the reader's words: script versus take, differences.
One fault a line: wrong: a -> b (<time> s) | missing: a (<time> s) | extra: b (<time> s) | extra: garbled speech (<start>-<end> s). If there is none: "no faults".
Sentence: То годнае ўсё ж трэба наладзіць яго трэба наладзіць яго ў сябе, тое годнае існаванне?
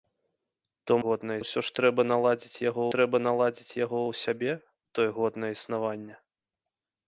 no faults